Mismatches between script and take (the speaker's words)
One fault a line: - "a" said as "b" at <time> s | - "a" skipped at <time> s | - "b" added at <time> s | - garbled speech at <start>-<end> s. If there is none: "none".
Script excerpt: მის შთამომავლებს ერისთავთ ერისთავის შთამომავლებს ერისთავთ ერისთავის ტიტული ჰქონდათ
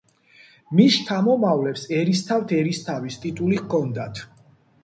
- "შთამომავლებს ერისთავთ ერისთავის" skipped at 3.2 s